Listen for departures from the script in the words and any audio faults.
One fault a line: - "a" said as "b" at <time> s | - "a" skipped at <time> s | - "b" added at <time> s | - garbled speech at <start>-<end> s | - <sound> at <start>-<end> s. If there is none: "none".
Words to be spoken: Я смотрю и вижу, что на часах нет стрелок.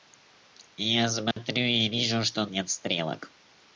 - dropout at 1.3-1.4 s
- "на часах" skipped at 2.5 s